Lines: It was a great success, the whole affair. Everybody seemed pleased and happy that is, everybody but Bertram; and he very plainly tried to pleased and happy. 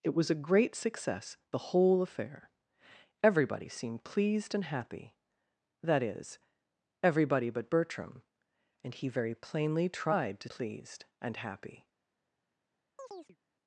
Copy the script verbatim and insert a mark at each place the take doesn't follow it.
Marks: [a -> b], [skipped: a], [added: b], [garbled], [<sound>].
It was a great success, the whole affair. Everybody seemed pleased and happy that is, everybody but Bertram; and he very plainly tried to pleased and happy. [chirp]